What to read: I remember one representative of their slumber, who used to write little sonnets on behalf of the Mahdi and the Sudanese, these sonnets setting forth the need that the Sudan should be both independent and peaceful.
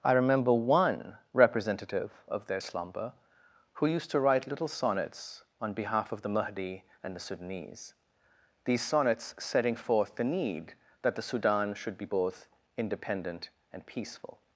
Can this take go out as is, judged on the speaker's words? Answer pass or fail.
pass